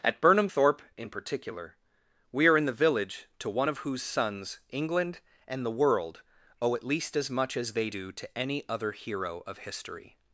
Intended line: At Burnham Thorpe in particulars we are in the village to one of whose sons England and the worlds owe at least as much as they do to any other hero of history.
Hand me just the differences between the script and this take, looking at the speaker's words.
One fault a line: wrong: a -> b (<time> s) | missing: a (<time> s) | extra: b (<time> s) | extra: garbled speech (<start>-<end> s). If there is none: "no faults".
wrong: particulars -> particular (1.1 s)
wrong: worlds -> world (5.7 s)